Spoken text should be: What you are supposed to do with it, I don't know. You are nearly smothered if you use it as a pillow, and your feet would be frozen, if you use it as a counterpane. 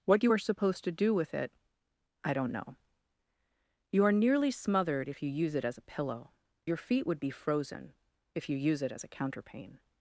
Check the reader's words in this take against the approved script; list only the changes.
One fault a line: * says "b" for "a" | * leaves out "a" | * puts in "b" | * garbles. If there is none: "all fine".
* leaves out "and"